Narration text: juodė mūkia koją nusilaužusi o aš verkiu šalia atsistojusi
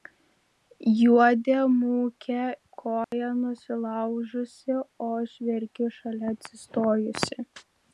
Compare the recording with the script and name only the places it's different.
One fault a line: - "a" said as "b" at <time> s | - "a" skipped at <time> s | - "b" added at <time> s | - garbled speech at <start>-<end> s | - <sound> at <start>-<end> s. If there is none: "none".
- dropout at 3.0-3.1 s